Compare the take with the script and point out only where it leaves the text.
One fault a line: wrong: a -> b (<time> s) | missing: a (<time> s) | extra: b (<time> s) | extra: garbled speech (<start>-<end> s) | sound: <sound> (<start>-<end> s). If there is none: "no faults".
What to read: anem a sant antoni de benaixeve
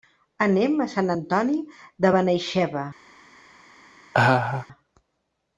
sound: laugh (4.1-4.7 s)